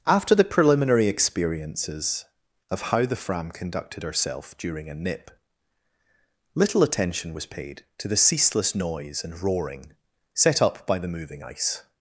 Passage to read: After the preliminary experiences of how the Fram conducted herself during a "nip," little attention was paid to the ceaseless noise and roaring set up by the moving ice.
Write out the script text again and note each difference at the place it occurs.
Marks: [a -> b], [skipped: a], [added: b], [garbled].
After the preliminary experiences of how the Fram conducted herself during a "nip," little attention was paid to the ceaseless noise and roaring set up by the moving ice.